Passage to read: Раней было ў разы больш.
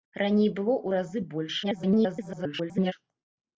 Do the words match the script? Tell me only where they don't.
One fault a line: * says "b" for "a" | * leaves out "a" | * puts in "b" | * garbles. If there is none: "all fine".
* garbles